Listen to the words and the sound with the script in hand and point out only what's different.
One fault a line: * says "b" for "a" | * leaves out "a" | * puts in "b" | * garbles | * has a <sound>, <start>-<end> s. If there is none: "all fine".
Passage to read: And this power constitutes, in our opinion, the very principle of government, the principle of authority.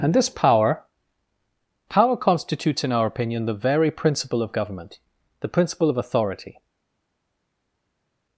* puts in "power"